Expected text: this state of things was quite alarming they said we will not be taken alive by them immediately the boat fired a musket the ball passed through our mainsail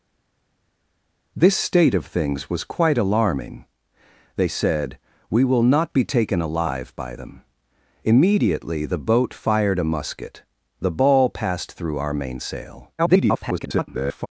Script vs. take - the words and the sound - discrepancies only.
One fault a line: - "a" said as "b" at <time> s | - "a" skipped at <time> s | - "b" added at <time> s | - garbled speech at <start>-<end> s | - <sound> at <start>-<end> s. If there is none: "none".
- garbled speech at 13.0-14.3 s